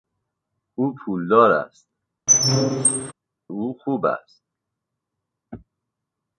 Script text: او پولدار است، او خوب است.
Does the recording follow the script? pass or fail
pass